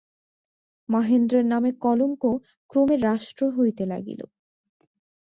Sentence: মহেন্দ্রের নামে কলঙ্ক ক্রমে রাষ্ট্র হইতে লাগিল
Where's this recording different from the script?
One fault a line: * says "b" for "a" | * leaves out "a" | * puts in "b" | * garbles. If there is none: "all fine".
all fine